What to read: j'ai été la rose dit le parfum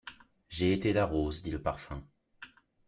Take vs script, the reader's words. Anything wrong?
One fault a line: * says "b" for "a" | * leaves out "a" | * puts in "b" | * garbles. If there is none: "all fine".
all fine